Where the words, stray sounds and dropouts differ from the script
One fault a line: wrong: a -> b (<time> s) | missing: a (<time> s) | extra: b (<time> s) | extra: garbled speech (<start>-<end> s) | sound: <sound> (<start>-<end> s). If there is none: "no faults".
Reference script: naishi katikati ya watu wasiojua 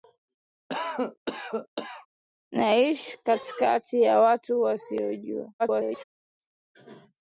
sound: cough (0.7-2.1 s)
extra: garbled speech (5.6-6.0 s)